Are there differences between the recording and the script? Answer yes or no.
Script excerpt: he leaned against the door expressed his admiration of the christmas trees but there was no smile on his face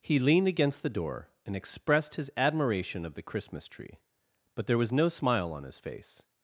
yes